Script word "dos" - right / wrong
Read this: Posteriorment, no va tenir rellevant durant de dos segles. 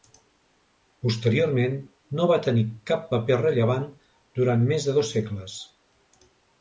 right